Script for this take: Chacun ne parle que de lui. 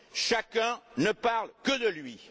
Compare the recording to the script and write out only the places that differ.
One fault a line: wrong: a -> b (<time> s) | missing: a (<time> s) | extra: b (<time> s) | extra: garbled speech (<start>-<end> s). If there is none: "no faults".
no faults